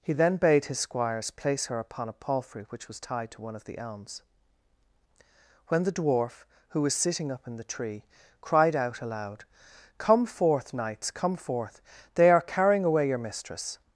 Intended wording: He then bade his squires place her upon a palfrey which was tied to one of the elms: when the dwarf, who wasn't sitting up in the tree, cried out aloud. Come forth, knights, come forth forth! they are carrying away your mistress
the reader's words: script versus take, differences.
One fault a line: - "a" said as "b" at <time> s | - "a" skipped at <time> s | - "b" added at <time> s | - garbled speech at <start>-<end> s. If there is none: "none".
- "wasn't" said as "was" at 6.8 s
- "forth" skipped at 11.8 s